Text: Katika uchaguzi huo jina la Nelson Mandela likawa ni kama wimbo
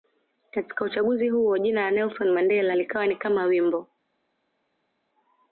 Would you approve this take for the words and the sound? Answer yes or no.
yes